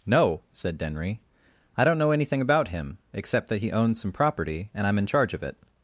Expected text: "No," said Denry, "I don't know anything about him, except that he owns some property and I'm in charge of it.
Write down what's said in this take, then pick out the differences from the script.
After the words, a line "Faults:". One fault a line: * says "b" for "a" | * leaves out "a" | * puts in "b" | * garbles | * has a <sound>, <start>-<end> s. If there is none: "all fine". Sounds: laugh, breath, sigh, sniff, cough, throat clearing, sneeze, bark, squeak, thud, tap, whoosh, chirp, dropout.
"No," said Denry, "I don't know anything about him, except that he owns some property and I'm in charge of it.
Faults:
all fine